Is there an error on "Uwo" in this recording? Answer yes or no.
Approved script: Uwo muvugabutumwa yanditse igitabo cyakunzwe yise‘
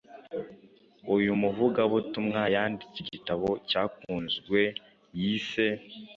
yes